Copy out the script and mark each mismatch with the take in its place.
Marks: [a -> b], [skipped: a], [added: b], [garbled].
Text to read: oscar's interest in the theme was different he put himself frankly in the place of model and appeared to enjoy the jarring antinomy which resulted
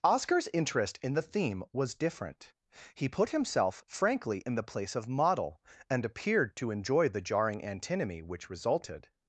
oscar's interest in the theme was different he put himself frankly in the place of model and appeared to enjoy the jarring antinomy which resulted